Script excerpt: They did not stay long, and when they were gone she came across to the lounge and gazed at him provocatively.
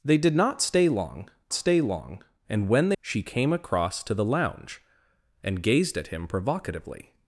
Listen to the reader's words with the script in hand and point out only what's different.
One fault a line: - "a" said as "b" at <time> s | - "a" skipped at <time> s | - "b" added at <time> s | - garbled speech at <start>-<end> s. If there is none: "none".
- "stay long" added at 1.5 s
- "were gone" skipped at 3.0 s